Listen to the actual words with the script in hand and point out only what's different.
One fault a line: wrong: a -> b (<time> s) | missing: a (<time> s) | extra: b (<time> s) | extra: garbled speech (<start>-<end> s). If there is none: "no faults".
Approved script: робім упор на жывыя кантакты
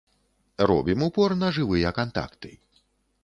no faults